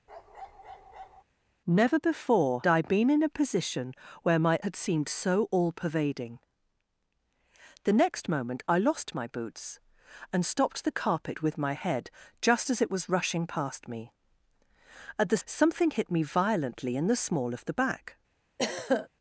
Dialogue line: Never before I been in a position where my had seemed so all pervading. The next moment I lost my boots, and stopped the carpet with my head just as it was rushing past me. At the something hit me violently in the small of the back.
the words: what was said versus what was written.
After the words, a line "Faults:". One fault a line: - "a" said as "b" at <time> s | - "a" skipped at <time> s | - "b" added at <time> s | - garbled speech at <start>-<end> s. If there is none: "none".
Never before I been in a position where my had seemed so all pervading. The next moment I lost my boots, and stopped the carpet with my head just as it was rushing past me. At the something hit me violently in the small of the back.
Faults:
none